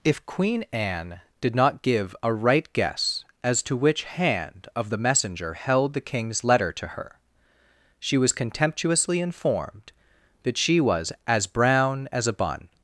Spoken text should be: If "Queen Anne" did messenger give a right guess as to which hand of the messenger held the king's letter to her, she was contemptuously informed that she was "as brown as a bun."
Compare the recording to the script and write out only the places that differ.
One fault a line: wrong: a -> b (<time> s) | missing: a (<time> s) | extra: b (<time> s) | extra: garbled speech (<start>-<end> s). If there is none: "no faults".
wrong: messenger -> not (1.6 s)